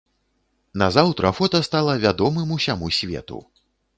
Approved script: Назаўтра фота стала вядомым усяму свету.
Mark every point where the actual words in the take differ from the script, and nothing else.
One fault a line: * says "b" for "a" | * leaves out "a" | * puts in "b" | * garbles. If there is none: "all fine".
all fine